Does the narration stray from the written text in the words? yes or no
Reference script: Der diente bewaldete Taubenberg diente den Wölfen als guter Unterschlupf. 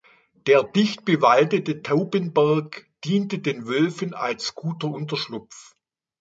yes